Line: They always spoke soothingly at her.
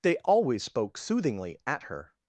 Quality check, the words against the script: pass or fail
pass